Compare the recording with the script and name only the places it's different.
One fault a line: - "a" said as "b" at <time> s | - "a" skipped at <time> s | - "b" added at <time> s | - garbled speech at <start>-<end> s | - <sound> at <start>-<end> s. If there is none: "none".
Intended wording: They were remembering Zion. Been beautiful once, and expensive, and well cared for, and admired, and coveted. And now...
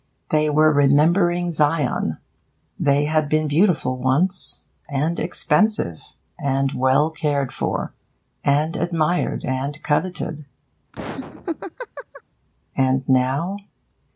- "They had" added at 2.8 s
- laugh at 10.9-12.2 s